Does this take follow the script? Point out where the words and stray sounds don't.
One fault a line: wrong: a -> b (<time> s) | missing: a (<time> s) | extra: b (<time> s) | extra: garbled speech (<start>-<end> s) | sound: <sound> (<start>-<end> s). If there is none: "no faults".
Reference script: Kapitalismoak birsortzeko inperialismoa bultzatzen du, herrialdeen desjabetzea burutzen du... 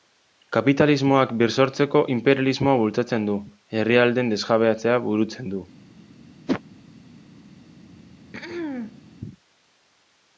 sound: whoosh (6.5-6.6 s)
sound: throat clearing (7.8-9.0 s)